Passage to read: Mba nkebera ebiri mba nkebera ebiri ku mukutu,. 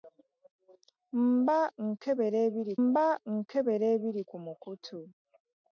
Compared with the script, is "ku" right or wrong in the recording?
right